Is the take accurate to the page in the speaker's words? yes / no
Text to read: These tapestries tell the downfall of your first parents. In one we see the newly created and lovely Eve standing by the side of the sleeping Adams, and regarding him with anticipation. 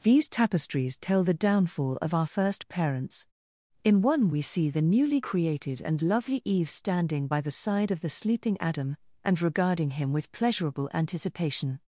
no